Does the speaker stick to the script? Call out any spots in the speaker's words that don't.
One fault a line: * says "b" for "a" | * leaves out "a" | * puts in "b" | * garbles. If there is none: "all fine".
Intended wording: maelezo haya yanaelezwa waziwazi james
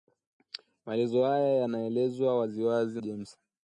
all fine